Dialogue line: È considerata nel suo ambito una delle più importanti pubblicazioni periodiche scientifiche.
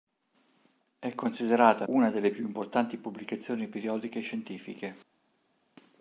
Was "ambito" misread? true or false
true